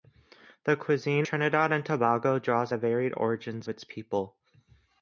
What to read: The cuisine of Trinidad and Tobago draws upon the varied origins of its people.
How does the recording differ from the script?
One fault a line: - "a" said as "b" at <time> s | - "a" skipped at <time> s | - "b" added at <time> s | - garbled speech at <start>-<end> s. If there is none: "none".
- "of" skipped at 1.3 s
- "upon" skipped at 2.7 s
- "of" skipped at 3.7 s